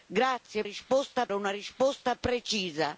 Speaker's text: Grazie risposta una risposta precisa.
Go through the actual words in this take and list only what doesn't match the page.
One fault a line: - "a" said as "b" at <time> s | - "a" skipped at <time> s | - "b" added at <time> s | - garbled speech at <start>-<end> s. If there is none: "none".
none